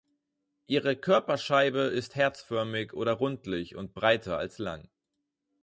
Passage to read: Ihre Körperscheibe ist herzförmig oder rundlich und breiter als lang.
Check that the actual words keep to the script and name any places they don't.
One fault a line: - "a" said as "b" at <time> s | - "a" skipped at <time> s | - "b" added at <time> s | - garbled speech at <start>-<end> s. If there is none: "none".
none